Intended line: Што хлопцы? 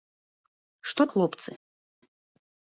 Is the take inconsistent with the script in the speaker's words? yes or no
no